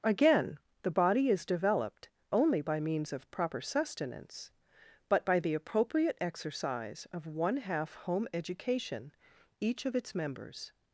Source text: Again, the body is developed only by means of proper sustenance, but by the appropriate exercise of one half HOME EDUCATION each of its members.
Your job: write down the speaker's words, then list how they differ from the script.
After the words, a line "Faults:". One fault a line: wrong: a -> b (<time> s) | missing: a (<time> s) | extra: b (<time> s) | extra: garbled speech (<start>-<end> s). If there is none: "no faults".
Again, the body is developed only by means of proper sustenance, but by the appropriate exercise of one half HOME EDUCATION each of its members.
Faults:
no faults